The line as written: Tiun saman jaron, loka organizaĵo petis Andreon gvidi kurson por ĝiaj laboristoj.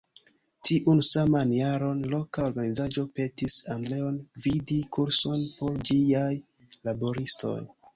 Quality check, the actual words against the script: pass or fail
pass